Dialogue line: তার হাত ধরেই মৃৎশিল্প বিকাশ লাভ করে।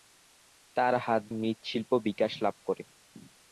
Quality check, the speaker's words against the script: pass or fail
fail